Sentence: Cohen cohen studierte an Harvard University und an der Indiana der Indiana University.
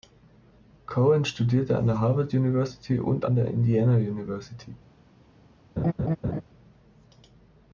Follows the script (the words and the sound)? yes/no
no